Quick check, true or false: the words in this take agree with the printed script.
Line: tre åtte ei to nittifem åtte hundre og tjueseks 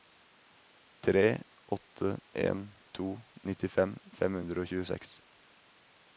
false